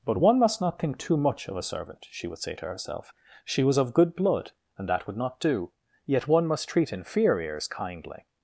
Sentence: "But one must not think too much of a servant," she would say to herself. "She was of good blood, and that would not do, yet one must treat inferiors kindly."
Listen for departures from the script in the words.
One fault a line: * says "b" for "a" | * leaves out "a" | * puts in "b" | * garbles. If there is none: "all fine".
all fine